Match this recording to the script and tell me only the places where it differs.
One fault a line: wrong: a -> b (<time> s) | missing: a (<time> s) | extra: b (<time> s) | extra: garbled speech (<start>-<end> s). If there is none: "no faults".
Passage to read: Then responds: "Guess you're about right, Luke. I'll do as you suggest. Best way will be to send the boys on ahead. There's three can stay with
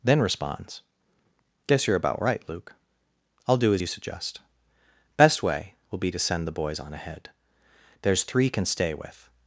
no faults